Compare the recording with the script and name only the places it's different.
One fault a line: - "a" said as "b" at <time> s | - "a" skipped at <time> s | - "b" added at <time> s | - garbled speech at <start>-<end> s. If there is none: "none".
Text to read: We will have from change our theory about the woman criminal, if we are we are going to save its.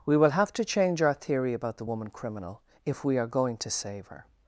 - "from" said as "to" at 0.5 s
- "we are" skipped at 3.3 s
- "its" said as "her" at 4.1 s